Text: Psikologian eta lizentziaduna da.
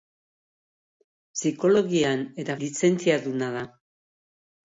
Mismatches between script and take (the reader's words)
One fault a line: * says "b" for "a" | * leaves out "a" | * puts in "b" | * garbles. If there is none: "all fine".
all fine